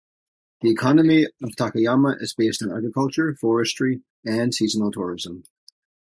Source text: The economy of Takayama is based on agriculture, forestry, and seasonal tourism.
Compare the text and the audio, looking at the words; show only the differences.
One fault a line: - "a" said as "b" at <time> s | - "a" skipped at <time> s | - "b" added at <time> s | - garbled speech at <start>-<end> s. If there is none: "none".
none